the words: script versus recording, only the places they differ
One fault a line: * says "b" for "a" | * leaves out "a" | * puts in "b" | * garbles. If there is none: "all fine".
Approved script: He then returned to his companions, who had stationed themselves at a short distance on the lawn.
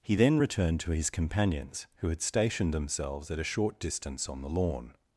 all fine